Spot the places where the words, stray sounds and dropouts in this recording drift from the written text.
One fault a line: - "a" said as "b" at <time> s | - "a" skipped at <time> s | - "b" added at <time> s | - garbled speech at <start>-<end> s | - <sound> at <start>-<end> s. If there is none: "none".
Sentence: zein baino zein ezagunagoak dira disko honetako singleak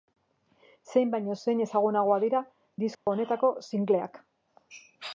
- dropout at 2.9-3.1 s